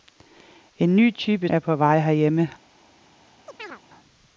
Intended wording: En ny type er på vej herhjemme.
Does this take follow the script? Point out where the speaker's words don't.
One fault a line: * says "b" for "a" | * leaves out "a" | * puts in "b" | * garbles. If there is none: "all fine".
all fine